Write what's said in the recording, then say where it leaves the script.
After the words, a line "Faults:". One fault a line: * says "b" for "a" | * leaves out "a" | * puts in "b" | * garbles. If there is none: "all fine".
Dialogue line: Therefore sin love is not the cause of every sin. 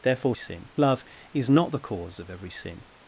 Therefore sin love is not the cause of every sin.
Faults:
all fine